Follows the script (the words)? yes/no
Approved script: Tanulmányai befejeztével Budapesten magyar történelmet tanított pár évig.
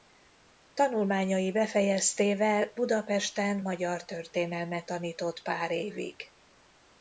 yes